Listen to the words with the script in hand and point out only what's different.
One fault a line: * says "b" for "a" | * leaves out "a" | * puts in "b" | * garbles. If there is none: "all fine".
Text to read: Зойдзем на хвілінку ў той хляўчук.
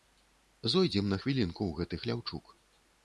* says "гэты" for "той"